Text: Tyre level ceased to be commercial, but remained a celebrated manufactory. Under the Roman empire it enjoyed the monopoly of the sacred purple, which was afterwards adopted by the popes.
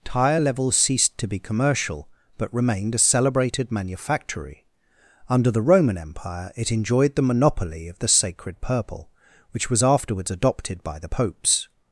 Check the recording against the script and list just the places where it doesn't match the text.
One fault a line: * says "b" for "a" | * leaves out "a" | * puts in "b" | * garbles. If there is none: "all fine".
all fine